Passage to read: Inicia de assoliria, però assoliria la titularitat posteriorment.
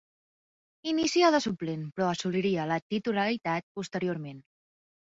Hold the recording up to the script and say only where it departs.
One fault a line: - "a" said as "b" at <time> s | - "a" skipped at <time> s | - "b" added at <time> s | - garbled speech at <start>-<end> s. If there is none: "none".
- "assoliria" said as "suplent" at 1.5 s